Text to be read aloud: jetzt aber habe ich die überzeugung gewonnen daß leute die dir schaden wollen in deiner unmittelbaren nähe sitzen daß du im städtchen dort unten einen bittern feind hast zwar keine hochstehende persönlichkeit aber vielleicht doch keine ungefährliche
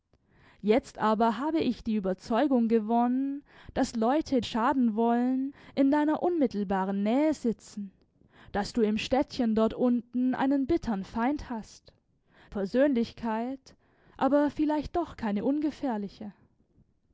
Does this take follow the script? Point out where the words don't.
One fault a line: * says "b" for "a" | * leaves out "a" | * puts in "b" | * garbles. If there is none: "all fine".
* leaves out "die dir"
* leaves out "zwar keine hochstehende"